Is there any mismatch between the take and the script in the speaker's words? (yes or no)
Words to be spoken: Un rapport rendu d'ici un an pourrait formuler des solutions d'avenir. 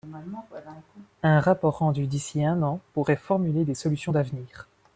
no